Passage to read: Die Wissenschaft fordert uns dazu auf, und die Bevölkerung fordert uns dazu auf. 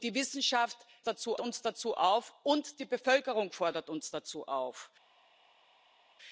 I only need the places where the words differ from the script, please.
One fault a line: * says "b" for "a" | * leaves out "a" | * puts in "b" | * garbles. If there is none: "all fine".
* says "dazu" for "fordert"